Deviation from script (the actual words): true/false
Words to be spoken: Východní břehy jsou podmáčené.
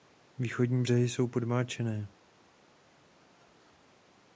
false